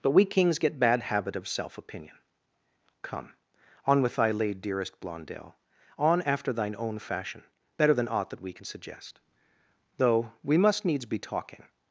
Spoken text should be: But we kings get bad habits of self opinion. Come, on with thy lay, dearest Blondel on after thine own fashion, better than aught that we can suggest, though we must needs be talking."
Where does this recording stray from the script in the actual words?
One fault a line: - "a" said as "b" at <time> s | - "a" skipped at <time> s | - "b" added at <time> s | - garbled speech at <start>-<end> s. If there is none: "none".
- "habits" said as "habit" at 1.0 s